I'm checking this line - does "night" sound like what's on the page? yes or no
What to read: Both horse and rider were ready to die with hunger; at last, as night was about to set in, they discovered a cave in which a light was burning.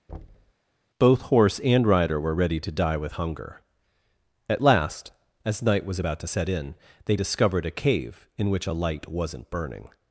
yes